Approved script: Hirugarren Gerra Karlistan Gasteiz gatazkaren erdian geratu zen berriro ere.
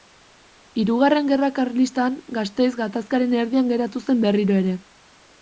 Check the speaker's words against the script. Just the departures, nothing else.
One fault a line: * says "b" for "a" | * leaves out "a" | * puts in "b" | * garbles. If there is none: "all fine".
all fine